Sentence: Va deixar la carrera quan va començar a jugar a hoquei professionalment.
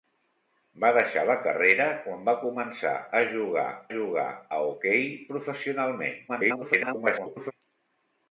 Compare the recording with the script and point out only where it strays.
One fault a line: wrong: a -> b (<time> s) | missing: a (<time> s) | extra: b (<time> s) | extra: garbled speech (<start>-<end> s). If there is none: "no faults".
extra: jugar (4.0 s)
extra: garbled speech (6.3-7.5 s)